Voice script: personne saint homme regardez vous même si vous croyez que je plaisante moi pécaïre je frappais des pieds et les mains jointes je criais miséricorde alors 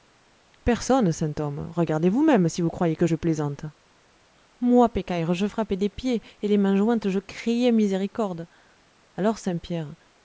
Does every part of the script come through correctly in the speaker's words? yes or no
yes